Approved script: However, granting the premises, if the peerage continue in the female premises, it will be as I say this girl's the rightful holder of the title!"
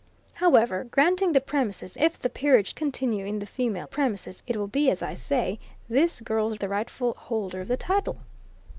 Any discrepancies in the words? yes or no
no